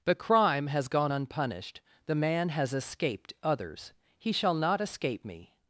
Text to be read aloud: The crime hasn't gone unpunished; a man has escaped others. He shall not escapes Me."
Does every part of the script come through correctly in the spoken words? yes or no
no